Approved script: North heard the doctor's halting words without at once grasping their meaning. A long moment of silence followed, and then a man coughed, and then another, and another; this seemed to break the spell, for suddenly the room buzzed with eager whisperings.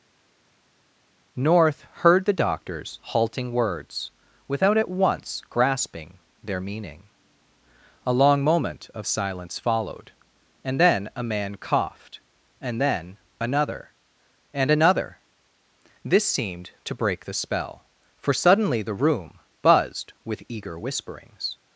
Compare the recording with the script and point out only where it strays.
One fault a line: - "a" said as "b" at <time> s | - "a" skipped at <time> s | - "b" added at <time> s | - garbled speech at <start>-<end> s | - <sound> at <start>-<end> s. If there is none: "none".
none